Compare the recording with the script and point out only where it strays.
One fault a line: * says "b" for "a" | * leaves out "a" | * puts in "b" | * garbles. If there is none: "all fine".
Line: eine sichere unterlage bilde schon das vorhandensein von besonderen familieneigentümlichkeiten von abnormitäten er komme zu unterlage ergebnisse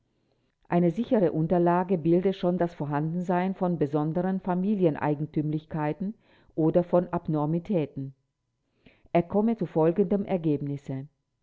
* puts in "oder"
* says "folgendem" for "unterlage"